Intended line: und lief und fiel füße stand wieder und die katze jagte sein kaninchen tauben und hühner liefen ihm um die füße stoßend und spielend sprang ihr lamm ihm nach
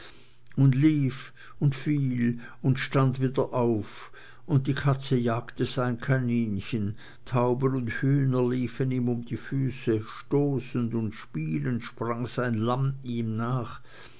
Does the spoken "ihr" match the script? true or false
false